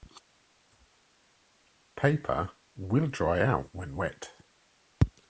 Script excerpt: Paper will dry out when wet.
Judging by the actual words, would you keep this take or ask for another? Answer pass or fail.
pass